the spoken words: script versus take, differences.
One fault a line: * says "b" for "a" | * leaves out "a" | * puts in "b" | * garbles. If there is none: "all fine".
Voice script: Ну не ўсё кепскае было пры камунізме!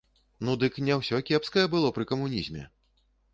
* puts in "дык"